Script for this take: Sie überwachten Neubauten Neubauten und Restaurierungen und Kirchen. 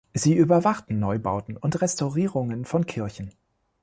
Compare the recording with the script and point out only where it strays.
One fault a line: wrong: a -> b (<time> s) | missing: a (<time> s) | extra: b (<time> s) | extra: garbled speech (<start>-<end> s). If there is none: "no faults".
missing: Neubauten (1.6 s)
wrong: und -> von (2.6 s)